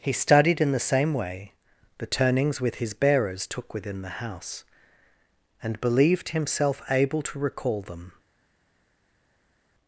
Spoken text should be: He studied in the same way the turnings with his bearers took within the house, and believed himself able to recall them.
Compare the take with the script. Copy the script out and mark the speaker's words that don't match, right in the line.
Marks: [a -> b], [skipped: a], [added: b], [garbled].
He studied in the same way the turnings with his bearers took within the house, and believed himself able to recall them.